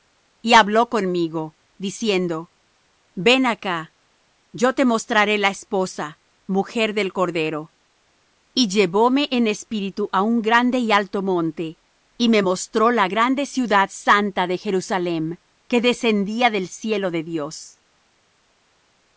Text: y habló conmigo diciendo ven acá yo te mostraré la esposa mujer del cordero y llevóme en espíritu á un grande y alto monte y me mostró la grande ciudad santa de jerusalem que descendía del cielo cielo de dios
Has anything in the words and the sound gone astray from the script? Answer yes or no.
yes